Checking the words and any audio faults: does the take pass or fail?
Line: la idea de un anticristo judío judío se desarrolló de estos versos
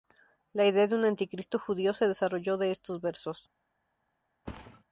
fail